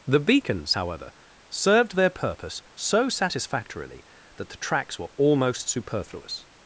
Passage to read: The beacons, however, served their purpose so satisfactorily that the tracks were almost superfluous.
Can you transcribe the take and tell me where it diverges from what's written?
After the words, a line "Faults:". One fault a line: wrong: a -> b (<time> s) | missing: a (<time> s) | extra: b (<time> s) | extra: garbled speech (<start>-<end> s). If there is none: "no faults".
The beacons, however, served their purpose so satisfactorily that the tracks were almost superfluous.
Faults:
no faults